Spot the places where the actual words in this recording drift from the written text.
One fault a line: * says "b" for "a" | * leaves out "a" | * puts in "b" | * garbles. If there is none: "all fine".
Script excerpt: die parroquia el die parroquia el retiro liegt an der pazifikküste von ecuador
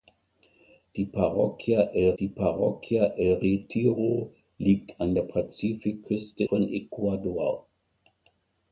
all fine